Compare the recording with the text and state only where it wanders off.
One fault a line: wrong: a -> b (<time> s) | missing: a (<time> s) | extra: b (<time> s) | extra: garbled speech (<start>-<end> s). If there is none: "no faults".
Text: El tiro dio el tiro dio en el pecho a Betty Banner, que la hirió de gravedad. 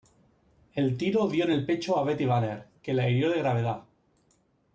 missing: el tiro dio (1.4 s)